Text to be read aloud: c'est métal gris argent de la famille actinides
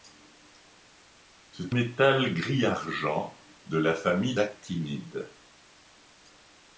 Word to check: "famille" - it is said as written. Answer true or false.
true